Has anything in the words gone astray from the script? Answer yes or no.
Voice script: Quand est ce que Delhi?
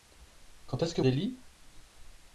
no